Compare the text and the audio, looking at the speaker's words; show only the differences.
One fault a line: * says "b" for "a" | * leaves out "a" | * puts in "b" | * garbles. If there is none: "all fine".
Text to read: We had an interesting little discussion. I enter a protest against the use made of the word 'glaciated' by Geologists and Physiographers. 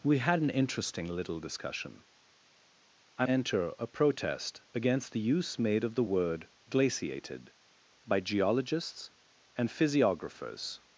all fine